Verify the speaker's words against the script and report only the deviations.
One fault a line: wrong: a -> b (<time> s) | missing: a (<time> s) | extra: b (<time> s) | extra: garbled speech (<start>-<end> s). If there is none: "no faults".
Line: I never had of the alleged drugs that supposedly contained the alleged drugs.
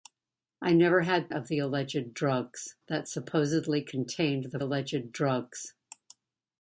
no faults